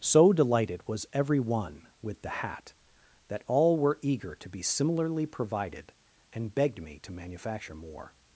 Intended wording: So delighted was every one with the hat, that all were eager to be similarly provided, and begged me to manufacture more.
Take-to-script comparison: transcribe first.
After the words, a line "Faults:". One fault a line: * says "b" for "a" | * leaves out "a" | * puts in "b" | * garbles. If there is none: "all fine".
So delighted was every one with the hat, that all were eager to be similarly provided, and begged me to manufacture more.
Faults:
all fine